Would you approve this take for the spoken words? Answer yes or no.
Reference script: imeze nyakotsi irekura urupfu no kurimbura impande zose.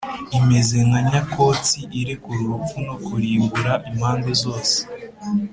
no